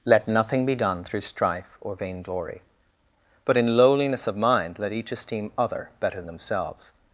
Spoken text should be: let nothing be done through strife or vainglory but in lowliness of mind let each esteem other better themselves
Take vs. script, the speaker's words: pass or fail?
pass